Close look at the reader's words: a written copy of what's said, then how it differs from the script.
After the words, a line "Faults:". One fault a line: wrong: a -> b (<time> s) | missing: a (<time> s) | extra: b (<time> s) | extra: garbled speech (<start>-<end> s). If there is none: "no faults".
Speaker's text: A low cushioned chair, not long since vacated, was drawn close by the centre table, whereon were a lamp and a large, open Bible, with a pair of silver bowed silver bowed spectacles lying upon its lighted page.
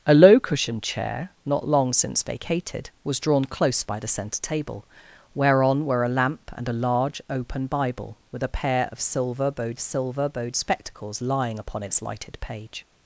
A low cushioned chair, not long since vacated, was drawn close by the centre table, whereon were a lamp and a large, open Bible, with a pair of silver bowed silver bowed spectacles lying upon its lighted page.
Faults:
no faults